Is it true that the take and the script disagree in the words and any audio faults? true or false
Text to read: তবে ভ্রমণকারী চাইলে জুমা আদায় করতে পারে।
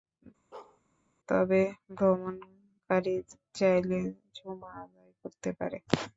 true